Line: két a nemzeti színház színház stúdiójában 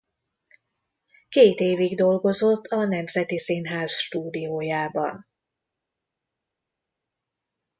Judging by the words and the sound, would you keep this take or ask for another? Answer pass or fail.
fail